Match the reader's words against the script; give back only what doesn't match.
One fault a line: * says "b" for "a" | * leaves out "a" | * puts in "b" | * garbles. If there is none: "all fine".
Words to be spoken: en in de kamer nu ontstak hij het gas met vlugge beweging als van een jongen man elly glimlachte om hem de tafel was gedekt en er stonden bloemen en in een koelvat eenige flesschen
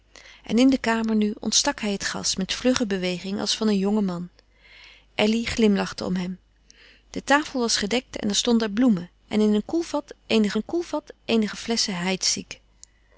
* puts in "een koelvat eenige"